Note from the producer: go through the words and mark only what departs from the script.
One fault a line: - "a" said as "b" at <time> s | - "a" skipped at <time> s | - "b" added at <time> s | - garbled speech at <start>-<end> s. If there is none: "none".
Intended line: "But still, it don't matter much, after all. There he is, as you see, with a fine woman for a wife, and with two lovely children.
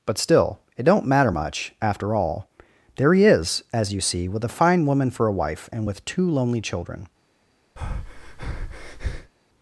- "lovely" said as "lonely" at 6.3 s